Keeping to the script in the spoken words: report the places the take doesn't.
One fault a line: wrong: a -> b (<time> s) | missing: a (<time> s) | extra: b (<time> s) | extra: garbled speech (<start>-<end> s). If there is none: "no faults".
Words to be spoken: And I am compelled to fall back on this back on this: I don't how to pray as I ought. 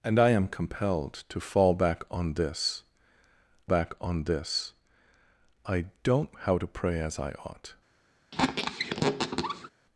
no faults